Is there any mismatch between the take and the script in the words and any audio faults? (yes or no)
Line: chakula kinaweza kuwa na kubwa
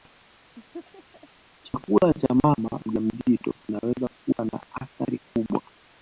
yes